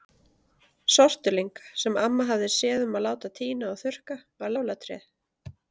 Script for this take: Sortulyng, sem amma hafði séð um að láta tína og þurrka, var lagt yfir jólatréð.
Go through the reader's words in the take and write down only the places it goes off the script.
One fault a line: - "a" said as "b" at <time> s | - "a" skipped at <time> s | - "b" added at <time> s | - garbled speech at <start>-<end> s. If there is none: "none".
- "lagt yfir" skipped at 4.5 s